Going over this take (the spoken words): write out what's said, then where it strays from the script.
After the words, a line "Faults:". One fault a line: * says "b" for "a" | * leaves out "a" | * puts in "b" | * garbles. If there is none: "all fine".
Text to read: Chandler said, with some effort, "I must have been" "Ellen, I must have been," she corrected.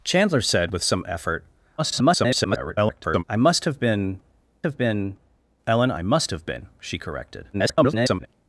Chandler said, with some effort, [garbled] "I must have been have been" "Ellen, I must have been," she corrected. [garbled]
Faults:
* garbles
* puts in "have been"
* garbles